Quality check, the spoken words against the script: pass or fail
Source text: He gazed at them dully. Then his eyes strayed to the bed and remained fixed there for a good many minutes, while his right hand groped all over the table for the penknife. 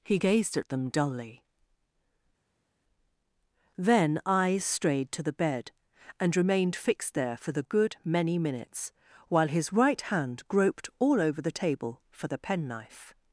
fail